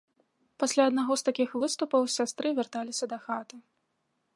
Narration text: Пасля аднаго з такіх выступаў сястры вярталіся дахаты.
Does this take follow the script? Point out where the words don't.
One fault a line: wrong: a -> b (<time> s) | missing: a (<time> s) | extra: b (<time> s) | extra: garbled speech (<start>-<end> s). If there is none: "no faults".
no faults